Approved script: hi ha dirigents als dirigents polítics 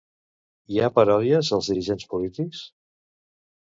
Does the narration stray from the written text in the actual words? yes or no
yes